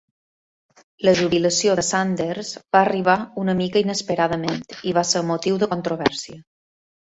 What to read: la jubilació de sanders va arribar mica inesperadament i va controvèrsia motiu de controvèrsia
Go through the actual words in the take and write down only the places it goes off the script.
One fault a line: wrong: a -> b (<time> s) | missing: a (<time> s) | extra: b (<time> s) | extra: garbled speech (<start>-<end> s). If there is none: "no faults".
extra: una (3.4 s)
wrong: controvèrsia -> ser (5.1 s)